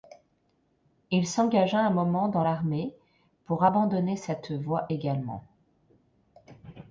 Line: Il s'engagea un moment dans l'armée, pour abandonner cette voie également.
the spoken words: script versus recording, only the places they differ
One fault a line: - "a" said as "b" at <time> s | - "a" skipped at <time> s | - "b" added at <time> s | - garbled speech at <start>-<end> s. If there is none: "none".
none